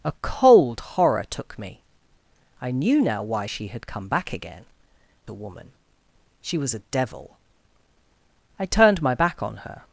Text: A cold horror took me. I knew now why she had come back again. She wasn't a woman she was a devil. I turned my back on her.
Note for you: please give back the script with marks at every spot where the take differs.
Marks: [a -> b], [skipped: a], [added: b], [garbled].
A cold horror took me. I knew now why she had come back again. [skipped: She wasn't] a woman she was a devil. I turned my back on her.